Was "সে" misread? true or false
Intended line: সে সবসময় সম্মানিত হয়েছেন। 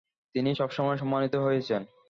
true